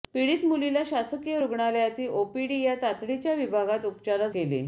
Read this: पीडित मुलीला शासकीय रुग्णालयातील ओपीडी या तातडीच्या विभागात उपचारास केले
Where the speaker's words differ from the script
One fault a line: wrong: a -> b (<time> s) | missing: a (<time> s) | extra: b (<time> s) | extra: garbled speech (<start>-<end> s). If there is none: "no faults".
no faults